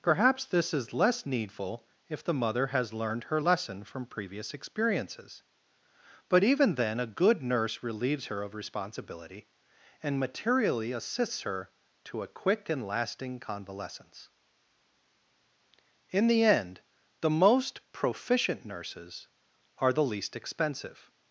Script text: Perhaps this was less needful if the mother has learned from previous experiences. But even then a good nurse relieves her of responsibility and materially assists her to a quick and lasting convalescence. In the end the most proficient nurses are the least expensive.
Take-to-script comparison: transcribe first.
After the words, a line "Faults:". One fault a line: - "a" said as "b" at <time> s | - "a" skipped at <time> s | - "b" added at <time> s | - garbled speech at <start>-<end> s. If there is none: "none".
Perhaps this is less needful if the mother has learned her lesson from previous experiences. But even then a good nurse relieves her of responsibility and materially assists her to a quick and lasting convalescence. In the end the most proficient nurses are the least expensive.
Faults:
- "was" said as "is" at 0.7 s
- "her lesson" added at 3.2 s